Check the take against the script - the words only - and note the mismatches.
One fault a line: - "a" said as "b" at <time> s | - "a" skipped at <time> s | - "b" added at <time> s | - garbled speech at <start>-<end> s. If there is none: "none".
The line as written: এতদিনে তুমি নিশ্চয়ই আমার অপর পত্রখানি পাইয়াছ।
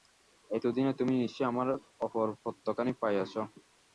none